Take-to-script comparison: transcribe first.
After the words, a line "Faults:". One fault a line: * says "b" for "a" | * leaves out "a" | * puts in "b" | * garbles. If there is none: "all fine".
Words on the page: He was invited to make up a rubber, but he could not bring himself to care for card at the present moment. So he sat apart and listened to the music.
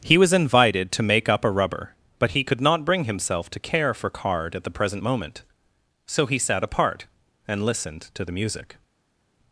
He was invited to make up a rubber, but he could not bring himself to care for card at the present moment. So he sat apart and listened to the music.
Faults:
all fine